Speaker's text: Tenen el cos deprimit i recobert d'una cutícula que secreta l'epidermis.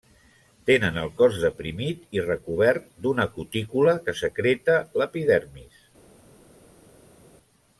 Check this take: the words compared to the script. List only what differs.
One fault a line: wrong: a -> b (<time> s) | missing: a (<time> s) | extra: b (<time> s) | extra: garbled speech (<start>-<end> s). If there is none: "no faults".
no faults